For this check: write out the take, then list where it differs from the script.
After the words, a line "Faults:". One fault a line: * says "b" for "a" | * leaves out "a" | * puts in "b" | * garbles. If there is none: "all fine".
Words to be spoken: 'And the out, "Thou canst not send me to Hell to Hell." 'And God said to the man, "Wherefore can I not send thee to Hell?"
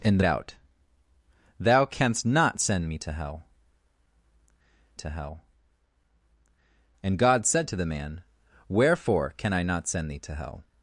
'And the out, "Thou canst not send me to Hell to Hell." 'And God said to the man, "Wherefore can I not send thee to Hell?"
Faults:
all fine